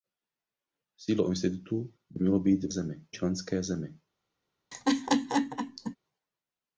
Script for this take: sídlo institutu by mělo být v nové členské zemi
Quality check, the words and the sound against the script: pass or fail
fail